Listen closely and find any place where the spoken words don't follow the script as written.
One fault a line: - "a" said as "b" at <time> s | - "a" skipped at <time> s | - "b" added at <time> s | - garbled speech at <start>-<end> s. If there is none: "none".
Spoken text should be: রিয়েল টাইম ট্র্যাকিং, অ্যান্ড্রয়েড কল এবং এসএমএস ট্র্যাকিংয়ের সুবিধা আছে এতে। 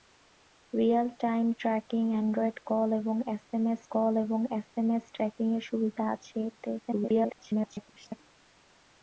- "কল এবং এসএমএস" added at 3.9 s
- garbled speech at 6.8-8.2 s